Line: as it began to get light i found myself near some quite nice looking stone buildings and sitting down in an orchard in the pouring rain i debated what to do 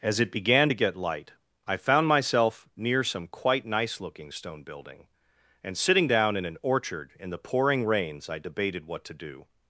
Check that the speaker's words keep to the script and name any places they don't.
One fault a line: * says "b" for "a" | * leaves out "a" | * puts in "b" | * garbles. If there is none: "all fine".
* says "building" for "buildings"
* says "rains" for "rain"